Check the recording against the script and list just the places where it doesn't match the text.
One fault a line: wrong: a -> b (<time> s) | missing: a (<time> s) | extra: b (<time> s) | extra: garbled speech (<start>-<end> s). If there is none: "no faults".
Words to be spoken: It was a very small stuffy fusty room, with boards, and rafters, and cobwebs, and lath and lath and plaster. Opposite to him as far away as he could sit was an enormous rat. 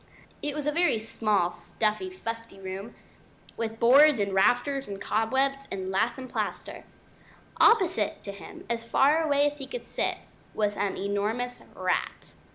missing: lath and (6.3 s)